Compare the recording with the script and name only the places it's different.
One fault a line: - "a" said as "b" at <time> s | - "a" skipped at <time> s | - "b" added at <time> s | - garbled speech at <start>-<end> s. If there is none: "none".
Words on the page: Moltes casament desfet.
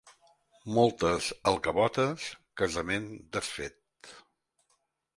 - "alcavotes" added at 1.5 s